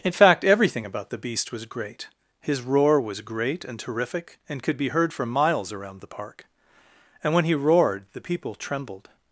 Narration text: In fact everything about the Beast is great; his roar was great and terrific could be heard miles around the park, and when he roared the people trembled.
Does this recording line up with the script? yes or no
no